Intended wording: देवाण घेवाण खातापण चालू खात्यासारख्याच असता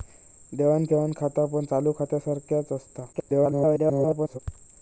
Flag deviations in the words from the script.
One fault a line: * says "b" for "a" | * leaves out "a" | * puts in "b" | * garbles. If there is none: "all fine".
* garbles